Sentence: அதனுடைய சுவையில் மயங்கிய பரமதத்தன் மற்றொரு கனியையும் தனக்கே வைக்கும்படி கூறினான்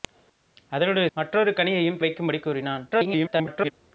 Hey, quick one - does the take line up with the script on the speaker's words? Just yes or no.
no